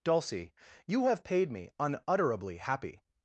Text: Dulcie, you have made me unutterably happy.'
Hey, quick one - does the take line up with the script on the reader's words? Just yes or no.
no